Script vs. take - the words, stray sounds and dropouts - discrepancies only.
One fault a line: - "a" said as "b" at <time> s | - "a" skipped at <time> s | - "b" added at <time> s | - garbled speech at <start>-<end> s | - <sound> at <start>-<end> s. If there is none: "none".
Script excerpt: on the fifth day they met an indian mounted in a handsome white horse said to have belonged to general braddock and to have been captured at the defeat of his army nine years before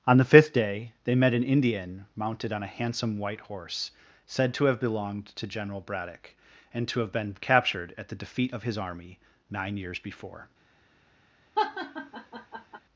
- "in" said as "on" at 2.5 s
- laugh at 11.6-12.8 s